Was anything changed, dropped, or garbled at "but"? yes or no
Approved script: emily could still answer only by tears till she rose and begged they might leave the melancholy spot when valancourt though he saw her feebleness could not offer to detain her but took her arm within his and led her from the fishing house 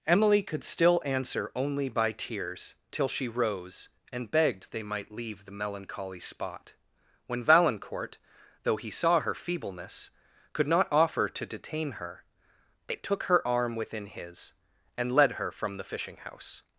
yes